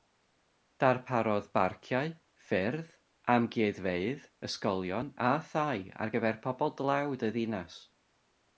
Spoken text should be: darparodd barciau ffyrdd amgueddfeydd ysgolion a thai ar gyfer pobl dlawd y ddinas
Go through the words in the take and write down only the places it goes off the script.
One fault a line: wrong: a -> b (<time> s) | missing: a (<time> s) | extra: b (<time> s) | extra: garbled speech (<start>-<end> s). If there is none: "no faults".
no faults